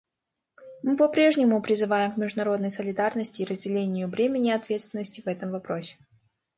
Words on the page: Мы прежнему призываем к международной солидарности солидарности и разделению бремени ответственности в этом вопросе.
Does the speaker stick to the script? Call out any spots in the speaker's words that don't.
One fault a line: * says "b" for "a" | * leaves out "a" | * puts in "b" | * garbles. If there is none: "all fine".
* puts in "по"
* leaves out "солидарности"